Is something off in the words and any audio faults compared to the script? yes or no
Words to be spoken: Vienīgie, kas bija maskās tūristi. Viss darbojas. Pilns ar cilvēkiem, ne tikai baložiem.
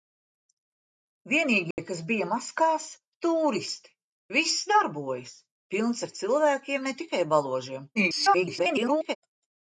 yes